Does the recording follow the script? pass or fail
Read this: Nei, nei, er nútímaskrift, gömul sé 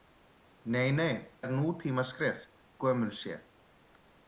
pass